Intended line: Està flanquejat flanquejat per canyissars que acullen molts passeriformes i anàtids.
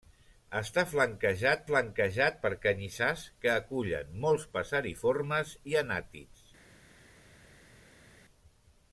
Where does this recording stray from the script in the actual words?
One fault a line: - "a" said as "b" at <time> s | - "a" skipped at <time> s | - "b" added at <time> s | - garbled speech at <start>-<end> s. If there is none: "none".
none